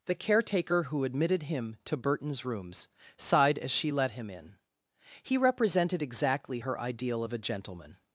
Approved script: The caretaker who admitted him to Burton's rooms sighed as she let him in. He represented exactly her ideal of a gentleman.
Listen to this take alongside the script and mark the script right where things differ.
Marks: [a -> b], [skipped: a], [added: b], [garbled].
The caretaker who admitted him to Burton's rooms sighed as she let him in. He represented exactly her ideal of a gentleman.